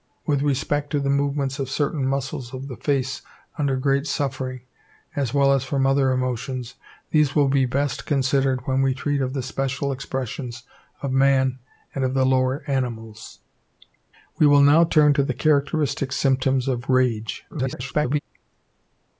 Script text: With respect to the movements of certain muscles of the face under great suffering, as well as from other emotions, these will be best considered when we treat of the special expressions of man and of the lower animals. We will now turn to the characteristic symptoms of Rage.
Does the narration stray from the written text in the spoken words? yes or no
yes